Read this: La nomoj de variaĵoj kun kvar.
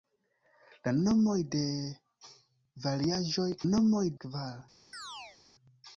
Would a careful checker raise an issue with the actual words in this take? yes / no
yes